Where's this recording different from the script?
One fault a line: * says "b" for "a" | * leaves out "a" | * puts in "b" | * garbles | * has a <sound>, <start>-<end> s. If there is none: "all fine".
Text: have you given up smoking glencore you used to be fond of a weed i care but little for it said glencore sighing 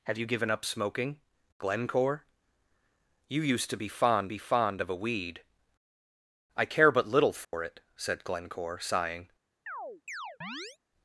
* puts in "be fond"
* has a dropout, 7.4-7.5 s
* has a chirp, 9.7-10.8 s